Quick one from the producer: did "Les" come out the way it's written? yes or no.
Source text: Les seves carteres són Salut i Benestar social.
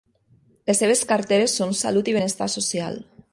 yes